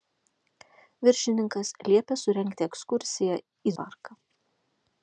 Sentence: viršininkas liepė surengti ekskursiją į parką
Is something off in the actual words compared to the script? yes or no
no